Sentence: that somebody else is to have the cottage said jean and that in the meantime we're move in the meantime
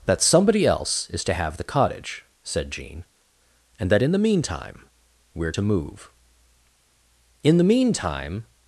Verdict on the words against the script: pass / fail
fail